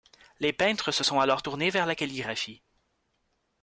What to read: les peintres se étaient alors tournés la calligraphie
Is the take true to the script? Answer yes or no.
no